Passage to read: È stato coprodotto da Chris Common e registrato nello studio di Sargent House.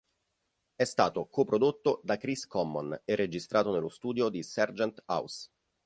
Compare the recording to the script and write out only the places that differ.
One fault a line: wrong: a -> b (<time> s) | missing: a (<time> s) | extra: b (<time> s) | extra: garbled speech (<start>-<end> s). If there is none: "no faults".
no faults